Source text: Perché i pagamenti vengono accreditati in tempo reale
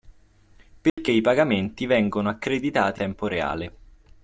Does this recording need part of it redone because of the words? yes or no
yes